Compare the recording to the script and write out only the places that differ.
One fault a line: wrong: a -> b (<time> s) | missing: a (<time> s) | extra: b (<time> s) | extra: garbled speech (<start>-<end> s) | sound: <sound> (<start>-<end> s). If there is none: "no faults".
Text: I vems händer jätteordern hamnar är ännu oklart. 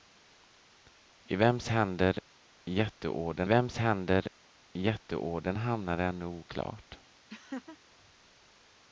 extra: vems händer jätteordern (3.4 s)
sound: laugh (7.3-7.8 s)